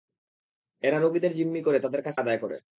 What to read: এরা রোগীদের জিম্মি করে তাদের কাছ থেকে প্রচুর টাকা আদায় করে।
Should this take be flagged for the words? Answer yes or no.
yes